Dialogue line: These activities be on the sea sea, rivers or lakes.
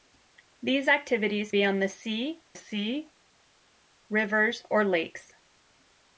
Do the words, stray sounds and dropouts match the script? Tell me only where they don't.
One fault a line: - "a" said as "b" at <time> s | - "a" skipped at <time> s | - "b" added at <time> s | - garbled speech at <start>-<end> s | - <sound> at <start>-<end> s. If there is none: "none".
none